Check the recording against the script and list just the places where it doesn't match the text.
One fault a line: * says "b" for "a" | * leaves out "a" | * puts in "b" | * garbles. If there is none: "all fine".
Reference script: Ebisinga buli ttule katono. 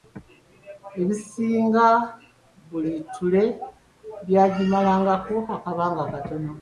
* puts in "byagimalangako akabanga"